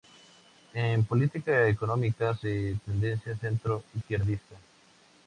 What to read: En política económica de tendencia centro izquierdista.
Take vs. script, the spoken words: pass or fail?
pass